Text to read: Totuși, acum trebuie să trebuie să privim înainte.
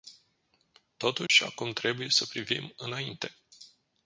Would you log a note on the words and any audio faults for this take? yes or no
yes